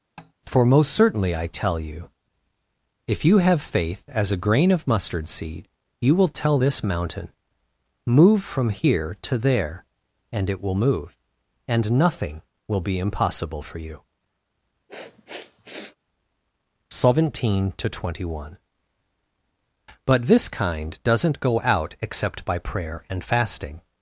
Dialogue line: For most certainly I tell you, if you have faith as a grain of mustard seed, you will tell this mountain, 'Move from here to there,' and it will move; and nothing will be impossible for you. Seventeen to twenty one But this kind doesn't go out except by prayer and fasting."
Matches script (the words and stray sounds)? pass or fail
fail